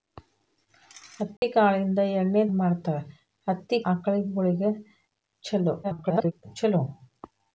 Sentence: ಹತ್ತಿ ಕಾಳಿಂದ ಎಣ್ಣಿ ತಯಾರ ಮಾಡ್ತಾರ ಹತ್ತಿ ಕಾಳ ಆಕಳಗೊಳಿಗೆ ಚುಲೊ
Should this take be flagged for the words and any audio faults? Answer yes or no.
yes